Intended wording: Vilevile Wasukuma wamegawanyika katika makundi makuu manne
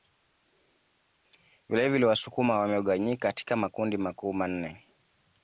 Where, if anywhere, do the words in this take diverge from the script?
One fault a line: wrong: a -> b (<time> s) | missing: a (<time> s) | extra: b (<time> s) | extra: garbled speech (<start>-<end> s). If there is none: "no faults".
no faults